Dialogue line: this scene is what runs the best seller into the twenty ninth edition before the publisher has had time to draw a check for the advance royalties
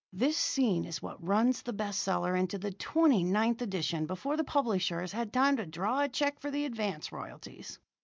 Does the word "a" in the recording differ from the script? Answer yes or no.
no